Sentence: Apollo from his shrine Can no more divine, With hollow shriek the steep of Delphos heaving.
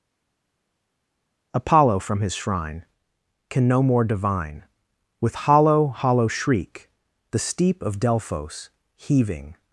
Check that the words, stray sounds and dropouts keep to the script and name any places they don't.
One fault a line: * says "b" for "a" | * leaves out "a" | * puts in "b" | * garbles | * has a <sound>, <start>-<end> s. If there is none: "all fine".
* puts in "hollow"